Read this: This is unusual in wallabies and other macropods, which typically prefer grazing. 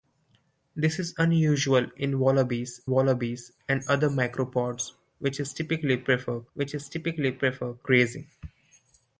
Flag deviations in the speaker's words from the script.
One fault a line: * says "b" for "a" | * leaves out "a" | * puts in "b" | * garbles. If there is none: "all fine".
* puts in "wallabies"
* puts in "which typically prefer"